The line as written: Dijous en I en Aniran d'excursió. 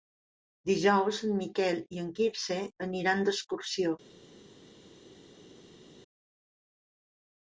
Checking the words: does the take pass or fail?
fail